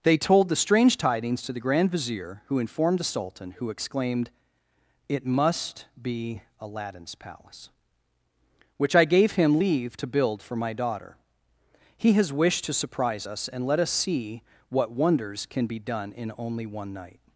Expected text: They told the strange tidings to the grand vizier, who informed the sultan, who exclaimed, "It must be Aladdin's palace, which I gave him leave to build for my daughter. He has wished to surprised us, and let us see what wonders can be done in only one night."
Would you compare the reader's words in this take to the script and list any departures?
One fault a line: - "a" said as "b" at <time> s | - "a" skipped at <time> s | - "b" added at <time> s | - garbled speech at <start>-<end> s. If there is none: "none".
- "surprised" said as "surprise" at 12.7 s